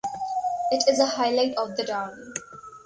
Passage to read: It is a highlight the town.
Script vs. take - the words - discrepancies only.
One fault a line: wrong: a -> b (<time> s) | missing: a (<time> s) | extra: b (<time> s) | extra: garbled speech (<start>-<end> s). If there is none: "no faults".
extra: of (1.5 s)